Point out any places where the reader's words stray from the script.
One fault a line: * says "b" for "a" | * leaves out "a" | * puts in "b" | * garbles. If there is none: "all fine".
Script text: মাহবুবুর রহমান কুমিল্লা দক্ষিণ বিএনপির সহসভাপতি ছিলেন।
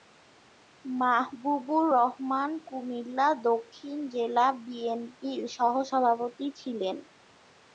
* puts in "জেলা"